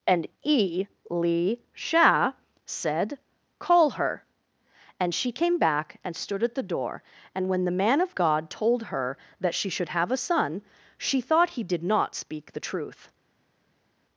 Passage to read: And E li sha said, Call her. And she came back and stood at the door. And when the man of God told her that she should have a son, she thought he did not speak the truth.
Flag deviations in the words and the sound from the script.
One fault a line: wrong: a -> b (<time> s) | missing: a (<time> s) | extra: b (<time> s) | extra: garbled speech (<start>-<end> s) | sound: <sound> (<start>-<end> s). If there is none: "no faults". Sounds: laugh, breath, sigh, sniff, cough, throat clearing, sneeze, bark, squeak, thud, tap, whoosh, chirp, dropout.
no faults